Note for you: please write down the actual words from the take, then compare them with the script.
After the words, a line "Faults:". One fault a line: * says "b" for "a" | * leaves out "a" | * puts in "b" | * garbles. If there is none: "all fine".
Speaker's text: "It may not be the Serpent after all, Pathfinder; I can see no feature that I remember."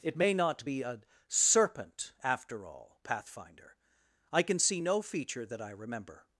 "It may not be a Serpent after all, Pathfinder; I can see no feature that I remember."
Faults:
* says "a" for "the"